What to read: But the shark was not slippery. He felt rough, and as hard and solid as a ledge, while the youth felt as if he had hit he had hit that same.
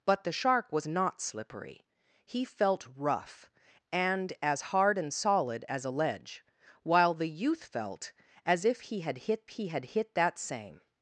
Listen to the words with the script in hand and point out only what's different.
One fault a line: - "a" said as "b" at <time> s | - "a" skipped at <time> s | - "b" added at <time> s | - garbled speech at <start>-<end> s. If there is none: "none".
none